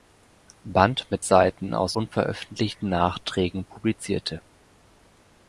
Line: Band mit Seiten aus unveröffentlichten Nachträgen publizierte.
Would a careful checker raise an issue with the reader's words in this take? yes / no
no